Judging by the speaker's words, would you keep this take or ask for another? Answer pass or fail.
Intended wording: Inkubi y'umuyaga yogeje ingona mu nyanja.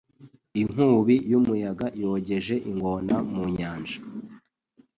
pass